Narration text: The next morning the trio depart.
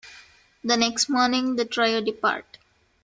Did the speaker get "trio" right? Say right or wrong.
right